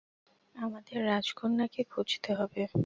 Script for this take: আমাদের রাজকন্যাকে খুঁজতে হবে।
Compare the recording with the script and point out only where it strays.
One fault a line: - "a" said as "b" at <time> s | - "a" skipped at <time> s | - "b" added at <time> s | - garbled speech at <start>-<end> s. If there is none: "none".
none